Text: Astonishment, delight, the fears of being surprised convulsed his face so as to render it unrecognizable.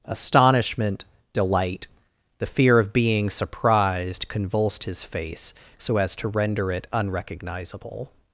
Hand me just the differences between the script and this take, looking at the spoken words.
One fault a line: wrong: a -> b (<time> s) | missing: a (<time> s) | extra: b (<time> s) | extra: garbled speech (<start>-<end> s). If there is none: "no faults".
wrong: fears -> fear (2.5 s)